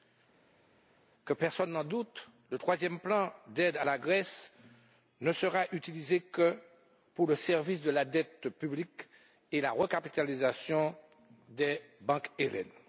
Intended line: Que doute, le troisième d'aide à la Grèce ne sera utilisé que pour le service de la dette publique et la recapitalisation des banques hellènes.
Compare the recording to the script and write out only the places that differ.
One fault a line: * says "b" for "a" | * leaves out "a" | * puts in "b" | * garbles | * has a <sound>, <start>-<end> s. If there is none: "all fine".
* puts in "personne n'en"
* puts in "plan"